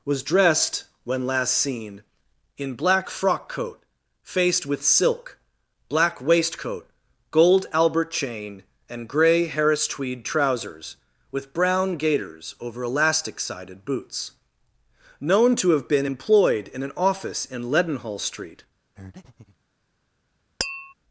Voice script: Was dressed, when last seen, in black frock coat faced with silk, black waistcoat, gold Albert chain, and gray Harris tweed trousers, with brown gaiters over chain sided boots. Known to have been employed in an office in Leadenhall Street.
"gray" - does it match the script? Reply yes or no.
yes